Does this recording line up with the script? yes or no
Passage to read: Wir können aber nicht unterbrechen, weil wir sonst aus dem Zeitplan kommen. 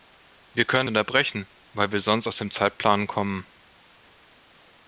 no